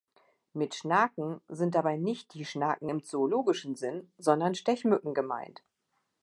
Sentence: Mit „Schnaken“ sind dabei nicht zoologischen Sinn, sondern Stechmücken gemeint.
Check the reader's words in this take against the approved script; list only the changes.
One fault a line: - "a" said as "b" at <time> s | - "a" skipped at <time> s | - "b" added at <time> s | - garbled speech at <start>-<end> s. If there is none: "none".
- "die Schnaken im" added at 2.3 s